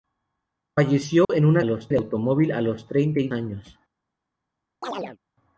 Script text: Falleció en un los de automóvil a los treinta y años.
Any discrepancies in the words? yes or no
no